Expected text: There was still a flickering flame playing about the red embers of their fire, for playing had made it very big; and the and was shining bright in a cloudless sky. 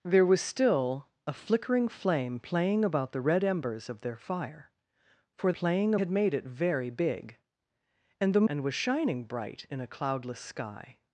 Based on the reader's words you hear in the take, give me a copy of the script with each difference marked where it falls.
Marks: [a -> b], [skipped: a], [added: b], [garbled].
There was still a flickering flame playing about the red embers of their fire, for playing had made it very big; and the and was shining bright in a cloudless sky.